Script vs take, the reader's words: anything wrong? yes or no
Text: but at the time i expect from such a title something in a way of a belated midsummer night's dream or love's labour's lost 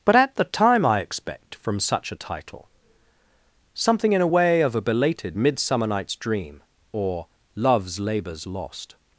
no